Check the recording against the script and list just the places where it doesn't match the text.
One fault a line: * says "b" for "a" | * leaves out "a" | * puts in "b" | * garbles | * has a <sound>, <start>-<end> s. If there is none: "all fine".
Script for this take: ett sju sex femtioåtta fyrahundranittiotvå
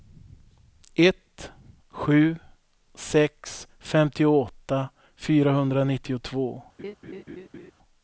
* has a laugh, 6.8-7.7 s